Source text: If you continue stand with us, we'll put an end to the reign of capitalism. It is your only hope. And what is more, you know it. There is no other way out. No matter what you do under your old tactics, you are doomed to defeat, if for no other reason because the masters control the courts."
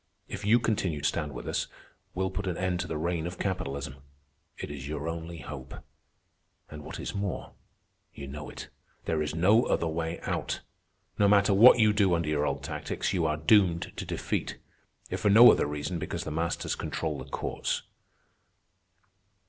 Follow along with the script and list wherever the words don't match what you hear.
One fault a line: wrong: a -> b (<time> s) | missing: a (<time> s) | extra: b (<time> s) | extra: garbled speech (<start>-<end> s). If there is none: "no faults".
no faults